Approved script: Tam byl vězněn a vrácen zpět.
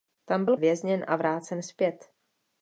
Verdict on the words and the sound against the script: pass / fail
pass